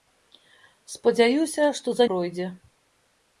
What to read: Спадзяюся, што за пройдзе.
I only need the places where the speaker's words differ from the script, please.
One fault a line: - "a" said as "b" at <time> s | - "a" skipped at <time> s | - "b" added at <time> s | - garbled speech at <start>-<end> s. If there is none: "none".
none